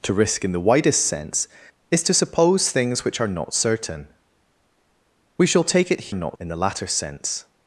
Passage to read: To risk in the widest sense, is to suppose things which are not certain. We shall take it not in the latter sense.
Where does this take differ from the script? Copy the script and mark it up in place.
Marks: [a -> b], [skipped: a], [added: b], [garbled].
To risk in the widest sense, is to suppose things which are not certain. We shall take it not in the latter sense.